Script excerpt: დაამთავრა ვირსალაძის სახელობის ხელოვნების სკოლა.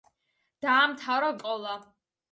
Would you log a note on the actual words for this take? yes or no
yes